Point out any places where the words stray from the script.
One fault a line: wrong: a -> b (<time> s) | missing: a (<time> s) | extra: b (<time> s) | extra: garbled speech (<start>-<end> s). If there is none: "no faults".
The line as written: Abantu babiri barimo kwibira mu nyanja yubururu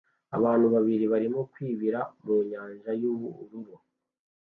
no faults